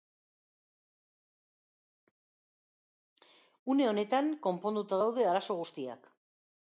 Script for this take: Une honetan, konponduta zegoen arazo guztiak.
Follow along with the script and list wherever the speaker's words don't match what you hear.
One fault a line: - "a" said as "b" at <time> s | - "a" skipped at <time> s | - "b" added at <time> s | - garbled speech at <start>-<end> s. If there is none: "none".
- "zegoen" said as "daude" at 5.0 s